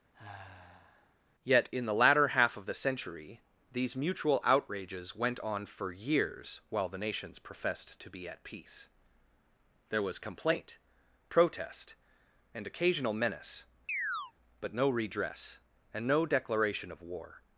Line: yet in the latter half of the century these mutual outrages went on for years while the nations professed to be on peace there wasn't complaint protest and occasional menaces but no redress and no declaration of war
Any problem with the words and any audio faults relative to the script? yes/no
yes